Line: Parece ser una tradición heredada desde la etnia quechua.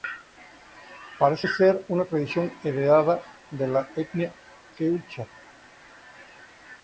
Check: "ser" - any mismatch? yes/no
no